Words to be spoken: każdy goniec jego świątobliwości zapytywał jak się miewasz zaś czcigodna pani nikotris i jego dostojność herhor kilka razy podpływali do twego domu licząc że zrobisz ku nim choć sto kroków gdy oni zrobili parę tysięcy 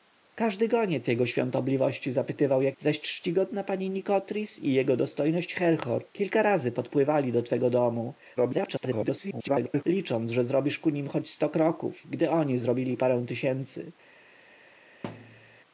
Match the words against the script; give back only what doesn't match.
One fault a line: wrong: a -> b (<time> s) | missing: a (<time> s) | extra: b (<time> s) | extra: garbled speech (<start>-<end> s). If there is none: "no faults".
missing: się miewasz (2.8 s)
extra: garbled speech (8.4-9.8 s)